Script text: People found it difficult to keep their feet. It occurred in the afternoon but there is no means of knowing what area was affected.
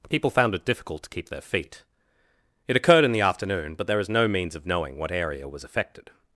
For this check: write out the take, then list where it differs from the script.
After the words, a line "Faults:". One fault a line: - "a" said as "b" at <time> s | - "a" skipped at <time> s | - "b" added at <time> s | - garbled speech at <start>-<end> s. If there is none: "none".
People found it difficult to keep their feet. It occurred in the afternoon but there is no means of knowing what area was affected.
Faults:
none